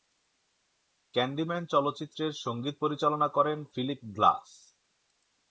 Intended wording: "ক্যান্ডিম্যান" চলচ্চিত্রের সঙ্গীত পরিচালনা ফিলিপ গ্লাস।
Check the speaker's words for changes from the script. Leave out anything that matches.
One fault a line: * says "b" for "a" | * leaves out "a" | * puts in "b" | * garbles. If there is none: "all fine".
* puts in "করেন"